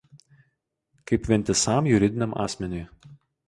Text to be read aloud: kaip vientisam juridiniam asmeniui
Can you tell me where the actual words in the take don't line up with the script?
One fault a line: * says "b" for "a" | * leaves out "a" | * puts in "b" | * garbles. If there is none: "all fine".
all fine